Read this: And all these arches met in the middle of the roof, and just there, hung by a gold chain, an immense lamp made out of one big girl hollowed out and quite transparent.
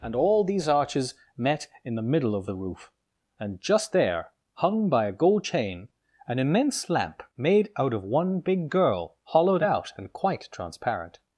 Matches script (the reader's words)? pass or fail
pass